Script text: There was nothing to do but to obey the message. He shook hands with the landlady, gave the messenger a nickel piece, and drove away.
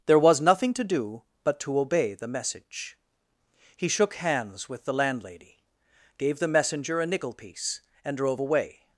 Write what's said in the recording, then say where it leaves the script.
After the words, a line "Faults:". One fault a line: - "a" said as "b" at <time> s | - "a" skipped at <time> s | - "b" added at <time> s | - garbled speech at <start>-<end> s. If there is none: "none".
There was nothing to do but to obey the message. He shook hands with the landlady, gave the messenger a nickel piece, and drove away.
Faults:
none